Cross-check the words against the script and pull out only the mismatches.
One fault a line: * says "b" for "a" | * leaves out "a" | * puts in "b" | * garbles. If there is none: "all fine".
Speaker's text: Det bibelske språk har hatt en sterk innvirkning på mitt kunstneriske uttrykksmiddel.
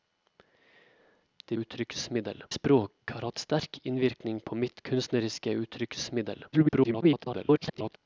* says "uttrykksmiddel" for "bibelske"
* leaves out "en"
* garbles